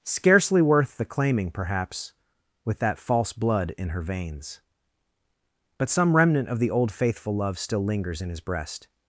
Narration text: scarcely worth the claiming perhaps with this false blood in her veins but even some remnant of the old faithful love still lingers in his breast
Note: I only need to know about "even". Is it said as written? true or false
false